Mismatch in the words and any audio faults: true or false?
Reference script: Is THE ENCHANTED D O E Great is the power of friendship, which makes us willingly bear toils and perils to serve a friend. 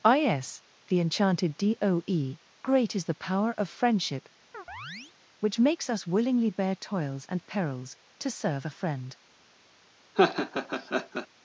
true